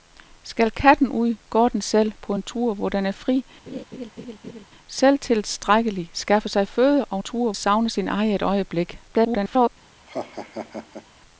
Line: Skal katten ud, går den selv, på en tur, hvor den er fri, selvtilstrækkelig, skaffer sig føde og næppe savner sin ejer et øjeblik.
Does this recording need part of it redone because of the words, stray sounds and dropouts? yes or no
yes